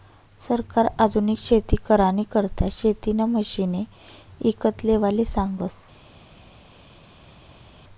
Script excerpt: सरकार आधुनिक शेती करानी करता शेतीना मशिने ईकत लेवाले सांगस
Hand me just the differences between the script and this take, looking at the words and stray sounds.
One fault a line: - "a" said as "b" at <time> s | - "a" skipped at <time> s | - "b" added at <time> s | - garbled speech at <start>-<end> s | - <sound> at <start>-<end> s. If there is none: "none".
none